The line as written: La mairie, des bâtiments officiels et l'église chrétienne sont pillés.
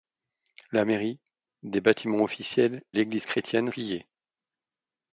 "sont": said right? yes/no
no